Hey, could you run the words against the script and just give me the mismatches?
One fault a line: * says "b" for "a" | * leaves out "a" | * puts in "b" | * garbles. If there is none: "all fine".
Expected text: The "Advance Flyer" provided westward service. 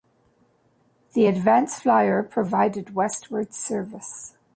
all fine